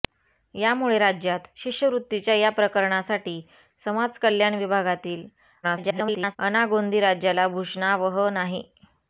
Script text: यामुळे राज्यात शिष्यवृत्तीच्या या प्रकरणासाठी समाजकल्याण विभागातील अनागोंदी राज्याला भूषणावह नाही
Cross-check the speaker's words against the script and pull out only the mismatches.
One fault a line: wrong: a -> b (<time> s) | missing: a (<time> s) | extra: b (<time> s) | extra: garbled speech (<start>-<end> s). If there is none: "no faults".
extra: garbled speech (5.6-6.4 s)